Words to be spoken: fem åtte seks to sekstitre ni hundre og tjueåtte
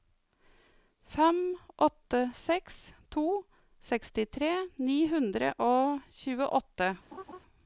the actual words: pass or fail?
pass